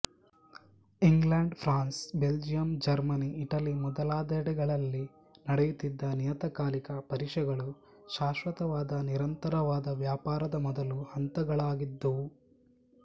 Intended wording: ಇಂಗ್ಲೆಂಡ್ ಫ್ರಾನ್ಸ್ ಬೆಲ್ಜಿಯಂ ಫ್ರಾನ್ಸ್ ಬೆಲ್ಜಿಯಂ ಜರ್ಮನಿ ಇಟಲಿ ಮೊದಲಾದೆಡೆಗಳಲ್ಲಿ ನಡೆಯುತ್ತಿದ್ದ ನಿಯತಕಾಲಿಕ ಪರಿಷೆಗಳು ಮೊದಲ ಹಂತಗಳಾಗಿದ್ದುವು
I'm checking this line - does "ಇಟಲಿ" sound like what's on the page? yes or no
yes